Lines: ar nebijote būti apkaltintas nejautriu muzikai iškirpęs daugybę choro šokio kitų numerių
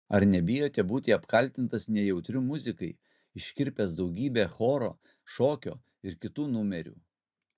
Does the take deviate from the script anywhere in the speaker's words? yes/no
yes